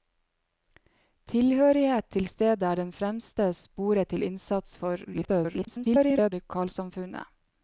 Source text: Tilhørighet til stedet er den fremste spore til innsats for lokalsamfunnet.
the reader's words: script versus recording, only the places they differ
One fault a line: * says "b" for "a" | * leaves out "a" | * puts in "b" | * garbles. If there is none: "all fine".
* garbles